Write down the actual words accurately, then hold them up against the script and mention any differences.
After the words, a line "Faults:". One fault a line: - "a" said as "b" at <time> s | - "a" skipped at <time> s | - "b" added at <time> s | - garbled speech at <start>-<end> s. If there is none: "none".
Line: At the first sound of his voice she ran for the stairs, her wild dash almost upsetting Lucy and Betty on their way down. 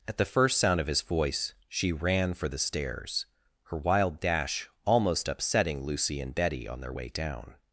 At the first sound of his voice she ran for the stairs, her wild dash almost upsetting Lucy and Betty on their way down.
Faults:
none